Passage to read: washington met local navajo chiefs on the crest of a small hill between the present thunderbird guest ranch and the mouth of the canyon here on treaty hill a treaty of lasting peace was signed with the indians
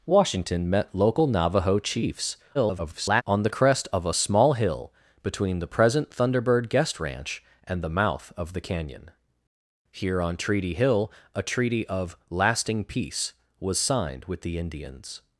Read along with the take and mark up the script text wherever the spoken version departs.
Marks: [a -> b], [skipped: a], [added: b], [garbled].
washington met local navajo chiefs [garbled] on the crest of a small hill between the present thunderbird guest ranch and the mouth of the canyon here on treaty hill a treaty of lasting peace was signed with the indians